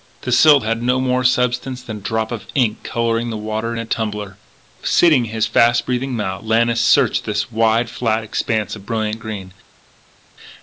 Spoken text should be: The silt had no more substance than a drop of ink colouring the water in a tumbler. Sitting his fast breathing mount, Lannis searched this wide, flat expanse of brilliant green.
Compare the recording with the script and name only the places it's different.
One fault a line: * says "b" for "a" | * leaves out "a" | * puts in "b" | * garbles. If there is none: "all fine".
all fine